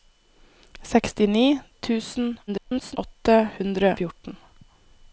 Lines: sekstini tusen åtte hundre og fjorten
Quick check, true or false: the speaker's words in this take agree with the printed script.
false